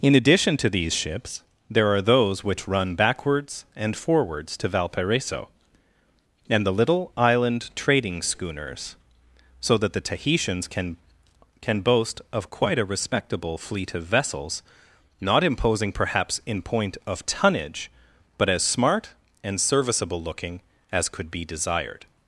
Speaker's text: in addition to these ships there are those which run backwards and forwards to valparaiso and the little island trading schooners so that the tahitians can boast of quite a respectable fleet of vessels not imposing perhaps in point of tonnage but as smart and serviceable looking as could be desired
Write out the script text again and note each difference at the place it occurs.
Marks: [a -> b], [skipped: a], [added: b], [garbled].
in addition to these ships there are those which run backwards and forwards to valparaiso and the little island trading schooners so that the tahitians can [added: can] boast of quite a respectable fleet of vessels not imposing perhaps in point of tonnage but as smart and serviceable looking as could be desired